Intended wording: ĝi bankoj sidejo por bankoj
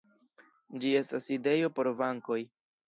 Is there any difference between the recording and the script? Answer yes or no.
yes